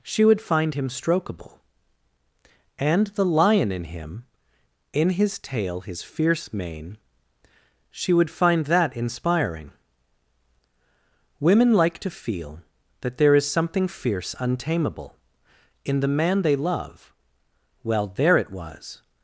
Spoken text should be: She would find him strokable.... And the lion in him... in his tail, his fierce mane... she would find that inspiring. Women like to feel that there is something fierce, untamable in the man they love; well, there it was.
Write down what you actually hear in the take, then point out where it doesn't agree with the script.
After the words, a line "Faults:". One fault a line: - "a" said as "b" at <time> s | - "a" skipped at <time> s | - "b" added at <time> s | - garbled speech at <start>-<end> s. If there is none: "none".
She would find him strokable.... And the lion in him... in his tail, his fierce mane... she would find that inspiring. Women like to feel that there is something fierce, untamable in the man they love; well, there it was.
Faults:
none